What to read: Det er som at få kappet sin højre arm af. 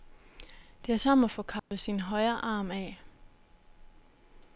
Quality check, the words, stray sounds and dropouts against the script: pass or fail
fail